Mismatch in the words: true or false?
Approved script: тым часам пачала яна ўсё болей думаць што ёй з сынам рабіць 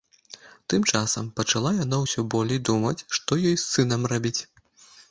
false